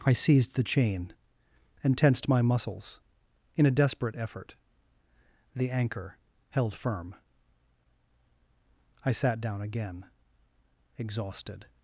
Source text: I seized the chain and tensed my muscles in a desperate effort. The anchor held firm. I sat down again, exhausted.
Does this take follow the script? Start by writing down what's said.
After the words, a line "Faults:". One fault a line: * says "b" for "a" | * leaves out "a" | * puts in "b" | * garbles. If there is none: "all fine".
I seized the chain and tensed my muscles in a desperate effort. The anchor held firm. I sat down again, exhausted.
Faults:
all fine